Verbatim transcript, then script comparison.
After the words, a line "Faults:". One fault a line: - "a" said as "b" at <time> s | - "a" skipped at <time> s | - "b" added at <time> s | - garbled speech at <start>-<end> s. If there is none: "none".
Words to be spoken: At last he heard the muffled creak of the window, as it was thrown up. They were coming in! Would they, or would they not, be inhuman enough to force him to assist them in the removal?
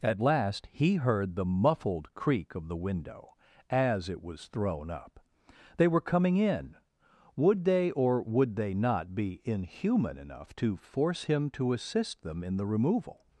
At last he heard the muffled creak of the window, as it was thrown up. They were coming in! Would they, or would they not, be inhuman enough to force him to assist them in the removal?
Faults:
none